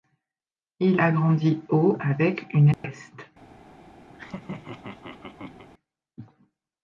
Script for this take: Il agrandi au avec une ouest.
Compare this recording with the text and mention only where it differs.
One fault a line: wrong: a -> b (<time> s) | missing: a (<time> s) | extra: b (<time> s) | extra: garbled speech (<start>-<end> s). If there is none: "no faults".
no faults